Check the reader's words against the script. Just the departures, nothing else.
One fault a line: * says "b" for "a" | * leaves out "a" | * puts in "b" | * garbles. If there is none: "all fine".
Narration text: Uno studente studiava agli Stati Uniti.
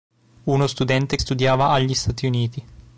all fine